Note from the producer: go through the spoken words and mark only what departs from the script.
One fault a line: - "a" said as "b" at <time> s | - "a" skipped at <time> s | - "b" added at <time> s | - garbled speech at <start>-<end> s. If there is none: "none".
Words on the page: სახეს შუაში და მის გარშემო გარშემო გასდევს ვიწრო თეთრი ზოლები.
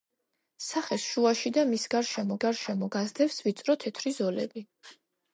none